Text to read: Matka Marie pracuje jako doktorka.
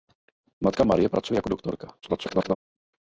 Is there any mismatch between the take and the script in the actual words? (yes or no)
yes